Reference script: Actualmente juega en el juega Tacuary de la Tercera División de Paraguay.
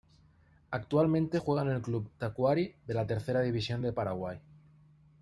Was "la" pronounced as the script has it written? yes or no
yes